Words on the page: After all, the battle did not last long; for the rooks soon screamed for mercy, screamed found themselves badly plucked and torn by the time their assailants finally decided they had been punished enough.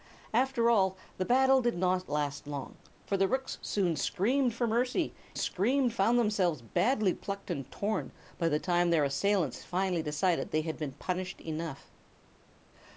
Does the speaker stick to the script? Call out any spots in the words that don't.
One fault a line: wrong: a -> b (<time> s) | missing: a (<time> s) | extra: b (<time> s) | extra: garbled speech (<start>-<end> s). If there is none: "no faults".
no faults